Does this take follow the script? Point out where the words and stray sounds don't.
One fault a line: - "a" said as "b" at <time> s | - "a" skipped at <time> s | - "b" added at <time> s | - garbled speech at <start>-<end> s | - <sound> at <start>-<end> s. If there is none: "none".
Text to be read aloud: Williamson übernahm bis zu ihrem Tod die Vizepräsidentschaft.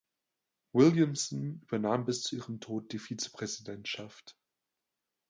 none